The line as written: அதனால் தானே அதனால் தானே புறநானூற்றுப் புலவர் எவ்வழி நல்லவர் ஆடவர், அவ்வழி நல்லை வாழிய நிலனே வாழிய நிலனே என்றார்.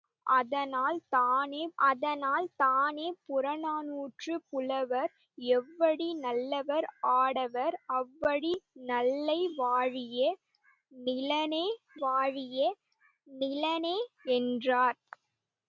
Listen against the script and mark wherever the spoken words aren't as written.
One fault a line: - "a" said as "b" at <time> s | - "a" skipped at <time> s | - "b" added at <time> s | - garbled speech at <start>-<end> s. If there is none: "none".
none